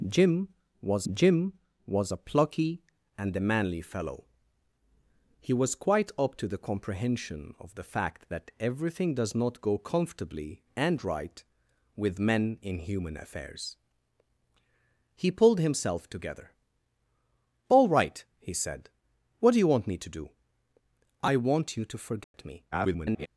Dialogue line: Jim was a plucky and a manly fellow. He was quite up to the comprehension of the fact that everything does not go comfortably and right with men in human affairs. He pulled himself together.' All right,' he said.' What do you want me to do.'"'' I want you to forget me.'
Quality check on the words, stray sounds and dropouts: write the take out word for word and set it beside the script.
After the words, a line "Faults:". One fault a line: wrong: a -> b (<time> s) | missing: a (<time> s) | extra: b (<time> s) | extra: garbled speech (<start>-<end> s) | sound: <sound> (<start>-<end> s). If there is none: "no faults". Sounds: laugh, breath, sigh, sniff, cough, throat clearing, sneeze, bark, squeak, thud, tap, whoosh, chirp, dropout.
Jim was jim was a plucky and a manly fellow. He was quite up to the comprehension of the fact that everything does not go comfortably and right with men in human affairs. He pulled himself together.' All right,' he said.' What do you want me to do.'"'' I want you to forget me.' [garbled]
Faults:
extra: jim was (1.1 s)
sound: dropout (22.2-22.3 s)
extra: garbled speech (22.7-23.3 s)